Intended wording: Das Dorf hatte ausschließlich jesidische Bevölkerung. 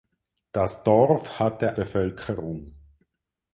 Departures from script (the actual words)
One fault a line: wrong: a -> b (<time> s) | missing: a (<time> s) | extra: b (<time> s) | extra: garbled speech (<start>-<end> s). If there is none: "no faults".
missing: ausschließlich jesidische (1.8 s)